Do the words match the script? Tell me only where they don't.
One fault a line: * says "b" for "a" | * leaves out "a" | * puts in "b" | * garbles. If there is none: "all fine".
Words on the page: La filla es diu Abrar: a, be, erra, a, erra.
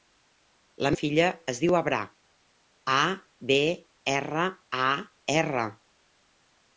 all fine